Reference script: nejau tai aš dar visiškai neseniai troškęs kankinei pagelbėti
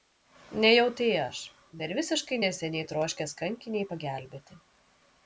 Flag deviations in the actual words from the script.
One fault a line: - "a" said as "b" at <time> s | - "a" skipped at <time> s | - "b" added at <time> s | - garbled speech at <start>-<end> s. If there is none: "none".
none